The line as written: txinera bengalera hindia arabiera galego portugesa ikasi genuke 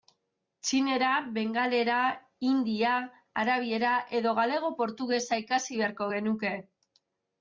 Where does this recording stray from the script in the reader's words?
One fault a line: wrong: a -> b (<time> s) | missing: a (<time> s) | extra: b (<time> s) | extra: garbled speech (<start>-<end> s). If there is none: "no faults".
extra: edo (4.2 s)
extra: beharko (5.8 s)